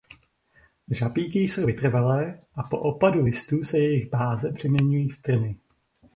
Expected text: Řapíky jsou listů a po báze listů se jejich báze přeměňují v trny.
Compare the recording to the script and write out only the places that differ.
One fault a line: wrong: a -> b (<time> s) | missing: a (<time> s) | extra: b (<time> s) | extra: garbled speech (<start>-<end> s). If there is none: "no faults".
wrong: listů -> vytrvalé (1.6 s)
wrong: báze -> opadu (2.8 s)